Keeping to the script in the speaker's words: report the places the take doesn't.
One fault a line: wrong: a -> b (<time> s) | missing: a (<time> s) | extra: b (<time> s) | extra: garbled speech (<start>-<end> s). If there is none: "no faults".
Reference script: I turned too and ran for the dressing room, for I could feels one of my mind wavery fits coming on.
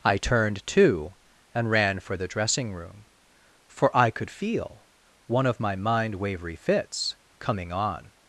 wrong: feels -> feel (4.3 s)